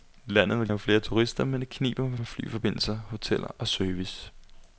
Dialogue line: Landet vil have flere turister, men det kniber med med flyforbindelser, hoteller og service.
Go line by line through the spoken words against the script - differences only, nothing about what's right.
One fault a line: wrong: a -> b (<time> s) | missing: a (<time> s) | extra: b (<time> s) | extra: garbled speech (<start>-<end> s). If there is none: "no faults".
no faults